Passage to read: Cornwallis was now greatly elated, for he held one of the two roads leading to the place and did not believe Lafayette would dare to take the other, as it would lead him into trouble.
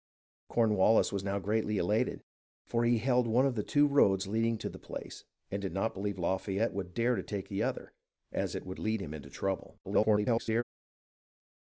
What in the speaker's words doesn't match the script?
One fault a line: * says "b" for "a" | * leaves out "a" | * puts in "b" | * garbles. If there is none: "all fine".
* garbles